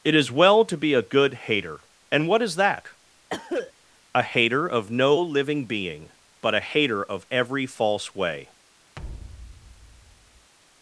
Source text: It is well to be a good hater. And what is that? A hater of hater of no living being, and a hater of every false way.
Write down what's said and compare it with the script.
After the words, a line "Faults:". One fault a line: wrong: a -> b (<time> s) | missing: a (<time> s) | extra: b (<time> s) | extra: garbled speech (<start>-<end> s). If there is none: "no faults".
It is well to be a good hater. And what is that? A hater of no living being, but a hater of every false way.
Faults:
missing: hater of (4.9 s)
wrong: and -> but (6.4 s)